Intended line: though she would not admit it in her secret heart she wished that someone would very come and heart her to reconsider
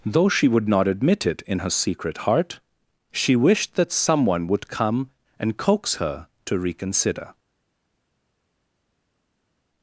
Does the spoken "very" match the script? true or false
false